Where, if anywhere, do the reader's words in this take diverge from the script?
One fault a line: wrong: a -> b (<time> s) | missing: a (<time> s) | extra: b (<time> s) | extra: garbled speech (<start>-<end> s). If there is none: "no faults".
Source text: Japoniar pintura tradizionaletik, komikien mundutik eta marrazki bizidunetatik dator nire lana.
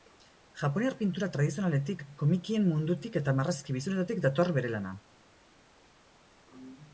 wrong: nire -> bere (4.6 s)